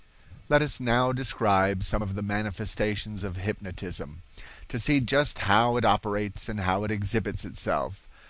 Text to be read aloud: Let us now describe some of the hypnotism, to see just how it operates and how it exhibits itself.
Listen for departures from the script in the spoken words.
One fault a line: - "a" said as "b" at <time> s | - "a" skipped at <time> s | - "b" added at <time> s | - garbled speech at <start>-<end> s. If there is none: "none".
- "manifestations of" added at 2.2 s